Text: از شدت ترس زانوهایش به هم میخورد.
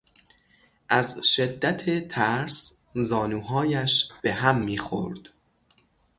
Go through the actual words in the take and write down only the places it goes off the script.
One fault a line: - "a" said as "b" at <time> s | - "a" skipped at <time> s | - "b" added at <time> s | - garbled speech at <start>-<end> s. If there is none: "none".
none